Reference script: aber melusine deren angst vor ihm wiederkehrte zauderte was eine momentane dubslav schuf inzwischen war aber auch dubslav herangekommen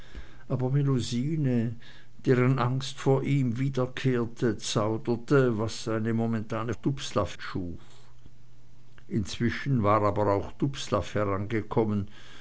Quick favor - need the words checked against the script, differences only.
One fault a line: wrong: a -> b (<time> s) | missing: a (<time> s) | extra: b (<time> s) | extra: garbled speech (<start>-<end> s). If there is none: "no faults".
no faults